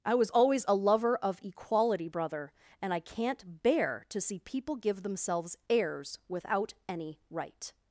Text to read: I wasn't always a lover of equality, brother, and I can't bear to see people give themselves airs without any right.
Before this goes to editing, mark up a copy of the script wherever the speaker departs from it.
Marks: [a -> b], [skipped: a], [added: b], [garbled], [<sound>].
I [wasn't -> was] always a lover of equality, brother, and I can't bear to see people give themselves airs without any right.